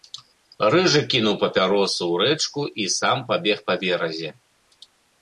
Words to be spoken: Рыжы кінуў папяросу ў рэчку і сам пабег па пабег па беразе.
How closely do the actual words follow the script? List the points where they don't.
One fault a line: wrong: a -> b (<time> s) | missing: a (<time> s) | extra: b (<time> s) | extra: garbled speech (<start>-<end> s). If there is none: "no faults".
missing: пабег па (3.8 s)